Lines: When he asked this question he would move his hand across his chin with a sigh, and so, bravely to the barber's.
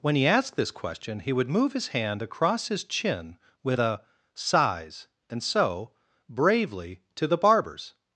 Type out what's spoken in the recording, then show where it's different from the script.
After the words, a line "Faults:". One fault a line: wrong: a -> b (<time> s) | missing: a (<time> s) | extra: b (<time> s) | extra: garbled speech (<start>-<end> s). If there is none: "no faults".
When he asked this question he would move his hand across his chin with a sighs, and so, bravely to the barber's.
Faults:
wrong: sigh -> sighs (4.3 s)